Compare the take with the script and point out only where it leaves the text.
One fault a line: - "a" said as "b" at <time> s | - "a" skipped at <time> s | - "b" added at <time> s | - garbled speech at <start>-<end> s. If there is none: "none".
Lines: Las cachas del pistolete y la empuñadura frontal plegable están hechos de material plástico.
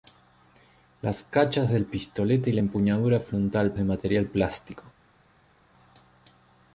- "plegable están hechos" skipped at 3.7 s